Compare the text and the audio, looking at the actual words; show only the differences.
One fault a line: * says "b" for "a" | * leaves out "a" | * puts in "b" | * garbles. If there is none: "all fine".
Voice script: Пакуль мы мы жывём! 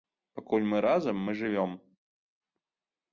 * puts in "разам"